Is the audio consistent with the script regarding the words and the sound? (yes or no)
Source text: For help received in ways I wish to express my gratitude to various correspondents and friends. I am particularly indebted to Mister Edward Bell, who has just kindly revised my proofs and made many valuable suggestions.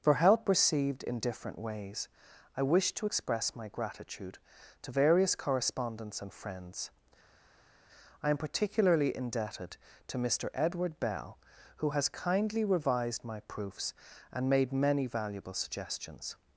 no